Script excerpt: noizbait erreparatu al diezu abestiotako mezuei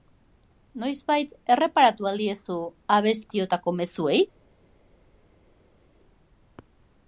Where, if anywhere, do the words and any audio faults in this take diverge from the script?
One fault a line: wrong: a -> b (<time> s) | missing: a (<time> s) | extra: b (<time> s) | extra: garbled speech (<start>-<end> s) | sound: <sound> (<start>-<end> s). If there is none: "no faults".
no faults